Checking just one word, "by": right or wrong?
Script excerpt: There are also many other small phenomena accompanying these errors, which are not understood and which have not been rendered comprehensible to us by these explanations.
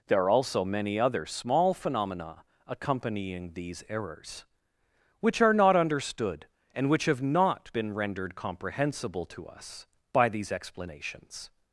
right